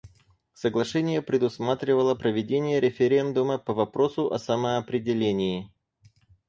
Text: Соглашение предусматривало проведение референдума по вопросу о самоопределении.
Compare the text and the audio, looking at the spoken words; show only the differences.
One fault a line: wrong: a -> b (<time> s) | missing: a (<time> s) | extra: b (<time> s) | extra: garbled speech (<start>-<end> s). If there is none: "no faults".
no faults